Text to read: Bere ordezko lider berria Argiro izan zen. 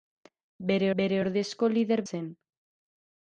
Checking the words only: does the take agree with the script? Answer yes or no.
no